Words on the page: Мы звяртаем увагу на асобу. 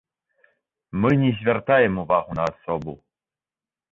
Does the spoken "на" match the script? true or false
true